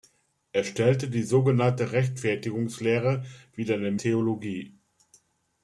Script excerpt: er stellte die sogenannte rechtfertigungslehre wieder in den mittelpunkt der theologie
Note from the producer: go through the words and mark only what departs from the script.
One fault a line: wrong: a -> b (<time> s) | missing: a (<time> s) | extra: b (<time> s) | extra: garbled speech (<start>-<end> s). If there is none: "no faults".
missing: mittelpunkt der (4.0 s)